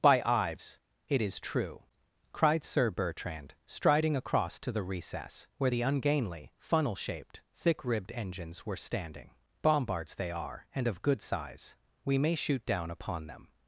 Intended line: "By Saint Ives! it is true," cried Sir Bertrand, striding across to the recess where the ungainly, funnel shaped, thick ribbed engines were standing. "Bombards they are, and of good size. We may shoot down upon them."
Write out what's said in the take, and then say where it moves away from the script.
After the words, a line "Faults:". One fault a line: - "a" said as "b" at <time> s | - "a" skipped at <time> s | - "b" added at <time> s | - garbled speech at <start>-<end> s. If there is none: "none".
"By Ives! it is true," cried Sir Bertrand, striding across to the recess where the ungainly, funnel shaped, thick ribbed engines were standing. "Bombards they are, and of good size. We may shoot down upon them."
Faults:
- "Saint" skipped at 0.2 s